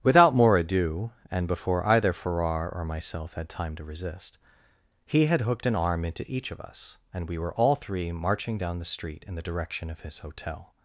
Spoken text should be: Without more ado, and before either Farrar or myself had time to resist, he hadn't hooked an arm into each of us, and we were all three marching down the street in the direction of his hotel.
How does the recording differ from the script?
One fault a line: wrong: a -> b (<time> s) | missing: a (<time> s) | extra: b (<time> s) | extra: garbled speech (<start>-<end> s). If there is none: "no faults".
wrong: hadn't -> had (5.3 s)